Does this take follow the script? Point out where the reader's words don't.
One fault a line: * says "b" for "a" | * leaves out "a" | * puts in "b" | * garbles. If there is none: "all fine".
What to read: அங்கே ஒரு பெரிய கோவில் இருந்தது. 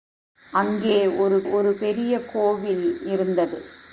* puts in "ஒரு"